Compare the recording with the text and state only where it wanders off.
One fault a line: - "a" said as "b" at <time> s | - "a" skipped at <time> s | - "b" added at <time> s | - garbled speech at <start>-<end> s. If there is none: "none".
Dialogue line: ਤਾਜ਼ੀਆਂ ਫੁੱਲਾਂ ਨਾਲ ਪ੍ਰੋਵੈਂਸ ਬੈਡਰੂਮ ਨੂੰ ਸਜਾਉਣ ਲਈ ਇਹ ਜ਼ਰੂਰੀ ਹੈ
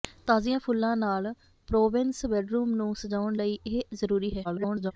- garbled speech at 4.4-4.9 s